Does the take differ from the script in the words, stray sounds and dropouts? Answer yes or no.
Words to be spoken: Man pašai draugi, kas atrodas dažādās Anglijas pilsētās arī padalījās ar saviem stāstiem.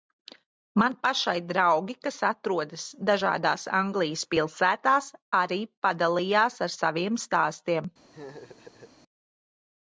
yes